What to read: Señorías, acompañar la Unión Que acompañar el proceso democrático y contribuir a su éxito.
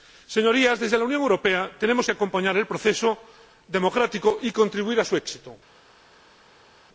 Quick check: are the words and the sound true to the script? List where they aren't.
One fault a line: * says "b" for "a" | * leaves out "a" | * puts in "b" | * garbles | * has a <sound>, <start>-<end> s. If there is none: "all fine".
* says "desde" for "acompañar"
* puts in "Europea tenemos"